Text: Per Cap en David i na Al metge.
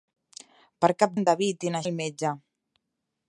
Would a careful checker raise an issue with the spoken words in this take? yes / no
no